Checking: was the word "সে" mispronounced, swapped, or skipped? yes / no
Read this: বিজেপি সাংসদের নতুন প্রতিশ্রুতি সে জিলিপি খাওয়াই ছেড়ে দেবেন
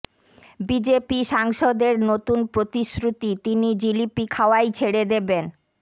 yes